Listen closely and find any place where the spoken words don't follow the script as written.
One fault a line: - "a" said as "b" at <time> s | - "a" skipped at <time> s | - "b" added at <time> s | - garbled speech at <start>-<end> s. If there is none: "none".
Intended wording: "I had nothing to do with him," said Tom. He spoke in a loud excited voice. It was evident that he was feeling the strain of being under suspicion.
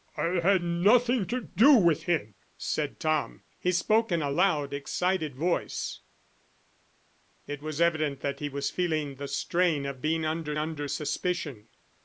- "under" added at 10.6 s